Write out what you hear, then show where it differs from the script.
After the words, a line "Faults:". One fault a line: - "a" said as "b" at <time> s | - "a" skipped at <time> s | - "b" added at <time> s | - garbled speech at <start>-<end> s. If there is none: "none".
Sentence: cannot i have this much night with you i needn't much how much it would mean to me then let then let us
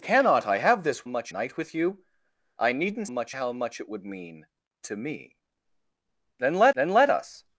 cannot i have this much night with you i needn't much how much it would mean to me then let then let us
Faults:
none